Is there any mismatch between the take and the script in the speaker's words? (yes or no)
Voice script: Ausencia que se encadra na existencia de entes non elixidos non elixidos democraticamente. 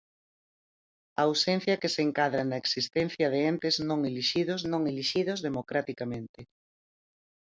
no